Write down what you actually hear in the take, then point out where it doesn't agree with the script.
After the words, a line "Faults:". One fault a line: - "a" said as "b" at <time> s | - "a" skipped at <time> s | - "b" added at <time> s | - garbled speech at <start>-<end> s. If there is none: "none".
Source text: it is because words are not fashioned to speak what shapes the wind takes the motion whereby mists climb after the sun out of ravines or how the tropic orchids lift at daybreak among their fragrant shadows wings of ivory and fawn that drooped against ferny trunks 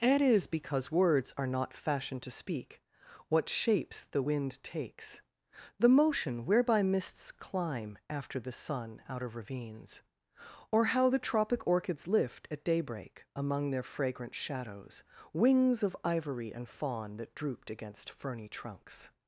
it is because words are not fashioned to speak what shapes the wind takes the motion whereby mists climb after the sun out of ravines or how the tropic orchids lift at daybreak among their fragrant shadows wings of ivory and fawn that drooped against ferny trunks
Faults:
none